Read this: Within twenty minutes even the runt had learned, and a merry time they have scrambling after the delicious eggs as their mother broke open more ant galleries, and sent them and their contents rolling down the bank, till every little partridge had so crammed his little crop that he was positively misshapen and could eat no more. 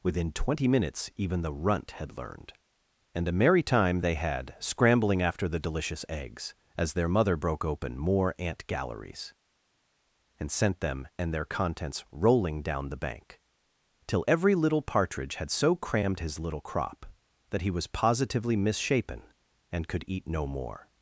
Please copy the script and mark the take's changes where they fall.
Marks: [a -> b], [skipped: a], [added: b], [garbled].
Within twenty minutes even the runt had learned, and a merry time they [have -> had] scrambling after the delicious eggs as their mother broke open more ant galleries, and sent them and their contents rolling down the bank, till every little partridge had so crammed his little crop that he was positively misshapen and could eat no more.